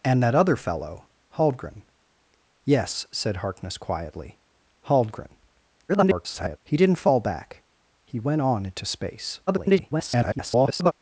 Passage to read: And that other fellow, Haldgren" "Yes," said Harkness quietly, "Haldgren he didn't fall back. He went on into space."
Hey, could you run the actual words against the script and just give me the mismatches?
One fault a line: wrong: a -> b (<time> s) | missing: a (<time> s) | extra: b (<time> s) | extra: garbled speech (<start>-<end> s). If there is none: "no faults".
extra: garbled speech (5.9-6.6 s)
extra: garbled speech (9.5-10.9 s)